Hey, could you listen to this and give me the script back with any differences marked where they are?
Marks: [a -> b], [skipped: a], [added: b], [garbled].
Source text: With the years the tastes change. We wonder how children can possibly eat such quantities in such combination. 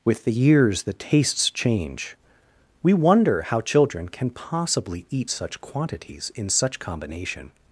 With the years the tastes change. We wonder how children can possibly eat such quantities in such combination.